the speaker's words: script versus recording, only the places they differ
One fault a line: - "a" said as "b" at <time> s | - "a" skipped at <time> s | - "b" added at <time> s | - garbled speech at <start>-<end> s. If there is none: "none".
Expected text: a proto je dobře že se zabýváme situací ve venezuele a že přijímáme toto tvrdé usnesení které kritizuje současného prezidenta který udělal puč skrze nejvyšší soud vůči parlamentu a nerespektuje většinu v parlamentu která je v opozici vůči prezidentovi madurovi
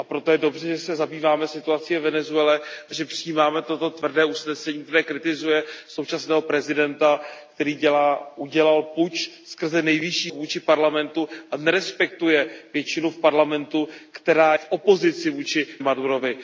- "soud" skipped at 10.3 s
- "je" skipped at 14.5 s
- "prezidentovi" skipped at 15.7 s